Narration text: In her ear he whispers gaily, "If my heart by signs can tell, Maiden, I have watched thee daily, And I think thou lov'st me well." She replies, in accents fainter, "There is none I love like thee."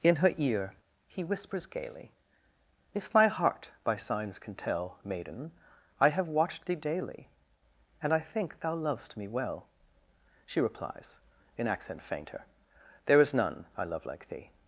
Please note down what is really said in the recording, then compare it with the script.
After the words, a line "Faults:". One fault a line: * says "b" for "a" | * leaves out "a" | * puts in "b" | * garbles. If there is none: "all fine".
In her ear he whispers gaily, "If my heart by signs can tell, Maiden, I have watched thee daily, And I think thou lov'st me well." She replies, in accent fainter, "There is none I love like thee."
Faults:
* says "accent" for "accents"